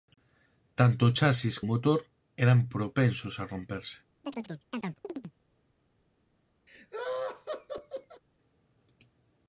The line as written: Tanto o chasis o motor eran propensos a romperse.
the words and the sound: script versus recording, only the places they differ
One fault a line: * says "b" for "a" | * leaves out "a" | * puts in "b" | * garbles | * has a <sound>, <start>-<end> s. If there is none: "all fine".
* has a chirp, 4.2-5.3 s
* has a laugh, 6.7-8.2 s